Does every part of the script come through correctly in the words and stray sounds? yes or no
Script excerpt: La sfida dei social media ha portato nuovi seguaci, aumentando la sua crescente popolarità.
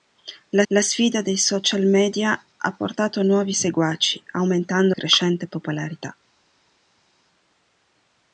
no